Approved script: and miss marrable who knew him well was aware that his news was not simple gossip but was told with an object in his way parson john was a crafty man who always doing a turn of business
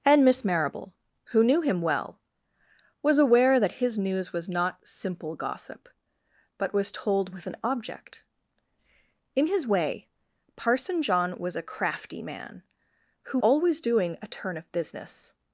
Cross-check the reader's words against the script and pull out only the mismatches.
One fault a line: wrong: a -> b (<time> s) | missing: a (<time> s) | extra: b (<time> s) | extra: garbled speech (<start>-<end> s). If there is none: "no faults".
no faults